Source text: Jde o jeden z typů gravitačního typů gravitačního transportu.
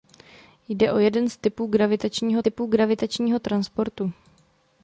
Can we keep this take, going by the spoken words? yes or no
yes